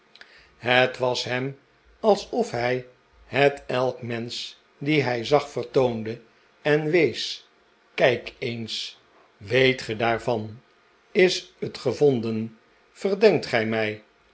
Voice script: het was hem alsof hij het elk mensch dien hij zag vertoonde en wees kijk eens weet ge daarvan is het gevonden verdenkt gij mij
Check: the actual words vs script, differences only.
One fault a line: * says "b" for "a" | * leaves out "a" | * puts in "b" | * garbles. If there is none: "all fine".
all fine